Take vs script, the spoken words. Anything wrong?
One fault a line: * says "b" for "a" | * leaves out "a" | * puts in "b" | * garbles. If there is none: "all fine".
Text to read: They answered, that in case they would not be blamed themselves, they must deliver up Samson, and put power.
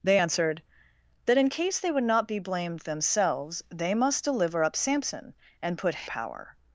all fine